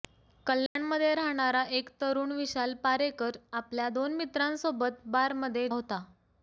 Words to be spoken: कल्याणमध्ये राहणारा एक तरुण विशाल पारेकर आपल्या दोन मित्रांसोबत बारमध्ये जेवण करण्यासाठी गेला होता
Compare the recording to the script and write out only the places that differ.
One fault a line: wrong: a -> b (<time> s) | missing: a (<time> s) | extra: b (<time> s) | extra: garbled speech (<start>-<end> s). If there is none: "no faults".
missing: जेवण करण्यासाठी गेला (5.7 s)